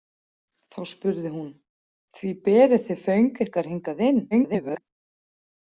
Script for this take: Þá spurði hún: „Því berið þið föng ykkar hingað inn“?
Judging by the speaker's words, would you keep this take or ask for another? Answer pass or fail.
fail